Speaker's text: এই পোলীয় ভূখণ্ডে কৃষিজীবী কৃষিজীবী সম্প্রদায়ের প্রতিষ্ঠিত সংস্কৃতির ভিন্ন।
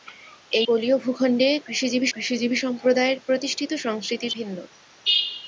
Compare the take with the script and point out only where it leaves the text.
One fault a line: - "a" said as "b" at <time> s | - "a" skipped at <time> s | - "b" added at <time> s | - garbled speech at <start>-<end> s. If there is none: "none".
none